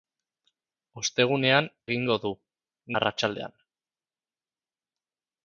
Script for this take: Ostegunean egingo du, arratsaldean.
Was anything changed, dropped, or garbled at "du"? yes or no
no